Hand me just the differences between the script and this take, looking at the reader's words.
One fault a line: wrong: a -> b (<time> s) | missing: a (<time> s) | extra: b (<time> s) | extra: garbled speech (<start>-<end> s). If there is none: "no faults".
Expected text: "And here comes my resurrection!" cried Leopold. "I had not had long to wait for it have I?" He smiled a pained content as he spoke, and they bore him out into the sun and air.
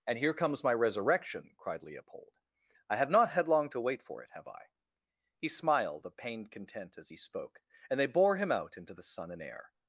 wrong: had -> have (3.0 s)